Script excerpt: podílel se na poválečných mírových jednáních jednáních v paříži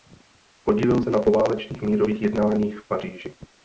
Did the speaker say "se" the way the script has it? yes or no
yes